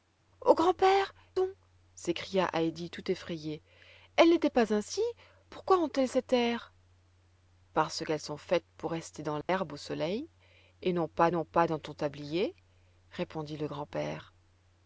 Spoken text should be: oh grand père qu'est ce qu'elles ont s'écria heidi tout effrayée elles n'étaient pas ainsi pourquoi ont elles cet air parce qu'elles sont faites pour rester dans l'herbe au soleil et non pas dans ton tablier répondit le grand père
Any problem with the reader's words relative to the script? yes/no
yes